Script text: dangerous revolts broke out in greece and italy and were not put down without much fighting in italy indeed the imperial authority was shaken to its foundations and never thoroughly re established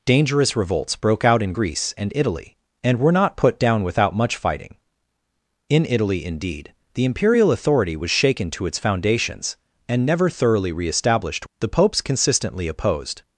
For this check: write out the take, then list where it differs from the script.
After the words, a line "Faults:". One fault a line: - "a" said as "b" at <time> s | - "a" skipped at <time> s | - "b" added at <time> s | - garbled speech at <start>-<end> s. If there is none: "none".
dangerous revolts broke out in greece and italy and were not put down without much fighting in italy indeed the imperial authority was shaken to its foundations and never thoroughly re established the popes consistently opposed
Faults:
- "the popes consistently opposed" added at 11.6 s